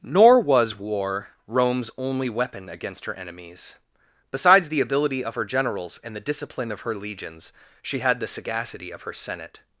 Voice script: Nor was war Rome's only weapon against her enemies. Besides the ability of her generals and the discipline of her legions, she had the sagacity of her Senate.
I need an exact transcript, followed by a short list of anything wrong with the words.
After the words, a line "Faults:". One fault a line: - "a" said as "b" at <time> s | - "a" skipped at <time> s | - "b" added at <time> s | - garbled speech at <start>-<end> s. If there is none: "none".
Nor was war Rome's only weapon against her enemies. Besides the ability of her generals and the discipline of her legions, she had the sagacity of her Senate.
Faults:
none